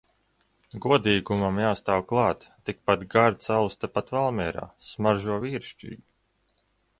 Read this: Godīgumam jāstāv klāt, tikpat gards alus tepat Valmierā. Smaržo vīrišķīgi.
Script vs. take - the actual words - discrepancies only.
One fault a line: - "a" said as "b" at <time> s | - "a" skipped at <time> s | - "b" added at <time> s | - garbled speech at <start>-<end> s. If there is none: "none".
none